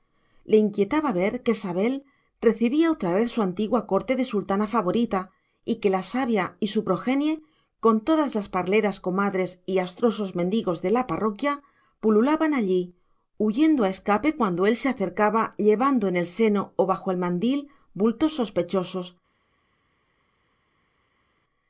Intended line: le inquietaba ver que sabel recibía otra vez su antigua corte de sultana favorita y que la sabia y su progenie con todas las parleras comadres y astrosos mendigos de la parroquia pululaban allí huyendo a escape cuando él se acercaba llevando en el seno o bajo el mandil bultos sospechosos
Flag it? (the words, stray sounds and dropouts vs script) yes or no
no